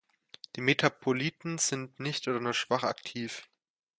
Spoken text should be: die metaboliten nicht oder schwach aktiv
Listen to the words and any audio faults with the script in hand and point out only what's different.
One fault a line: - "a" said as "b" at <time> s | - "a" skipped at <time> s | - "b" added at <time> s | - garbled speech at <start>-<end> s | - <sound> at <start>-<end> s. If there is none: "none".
- "sind" added at 1.6 s
- "nur" added at 2.4 s